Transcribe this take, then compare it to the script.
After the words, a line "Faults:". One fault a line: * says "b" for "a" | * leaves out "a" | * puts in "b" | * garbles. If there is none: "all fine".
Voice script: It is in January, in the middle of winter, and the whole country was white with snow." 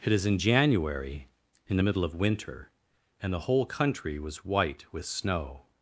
It is in January, in the middle of winter, and the whole country was white with snow."
Faults:
all fine